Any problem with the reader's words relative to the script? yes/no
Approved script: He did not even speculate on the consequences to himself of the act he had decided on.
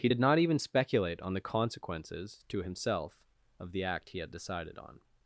no